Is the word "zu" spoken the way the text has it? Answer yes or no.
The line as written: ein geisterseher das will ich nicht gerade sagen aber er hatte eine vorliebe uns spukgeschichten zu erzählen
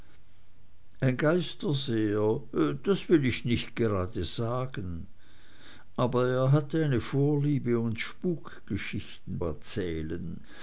no